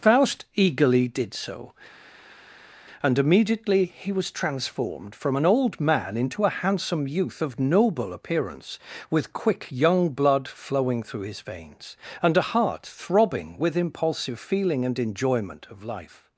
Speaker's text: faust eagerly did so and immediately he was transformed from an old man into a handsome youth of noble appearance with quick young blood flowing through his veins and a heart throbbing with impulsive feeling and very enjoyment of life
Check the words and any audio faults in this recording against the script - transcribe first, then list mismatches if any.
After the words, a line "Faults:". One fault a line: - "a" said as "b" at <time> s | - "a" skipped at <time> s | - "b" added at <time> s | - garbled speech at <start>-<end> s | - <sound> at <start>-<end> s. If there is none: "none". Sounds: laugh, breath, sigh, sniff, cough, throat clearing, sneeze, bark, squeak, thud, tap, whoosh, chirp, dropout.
faust eagerly did so and immediately he was transformed from an old man into a handsome youth of noble appearance with quick young blood flowing through his veins and a heart throbbing with impulsive feeling and enjoyment of life
Faults:
- "very" skipped at 15.0 s